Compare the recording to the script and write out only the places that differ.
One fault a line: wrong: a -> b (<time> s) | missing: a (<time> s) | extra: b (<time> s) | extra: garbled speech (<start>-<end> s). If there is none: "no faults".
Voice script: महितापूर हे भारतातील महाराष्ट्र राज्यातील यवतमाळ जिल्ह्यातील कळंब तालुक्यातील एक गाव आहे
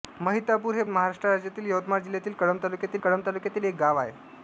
missing: भारतातील (0.8 s)
extra: कळंब तालुक्यातील (3.0 s)